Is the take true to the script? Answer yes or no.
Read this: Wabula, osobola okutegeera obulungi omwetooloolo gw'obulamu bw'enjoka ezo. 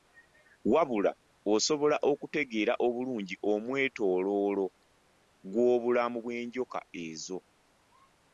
yes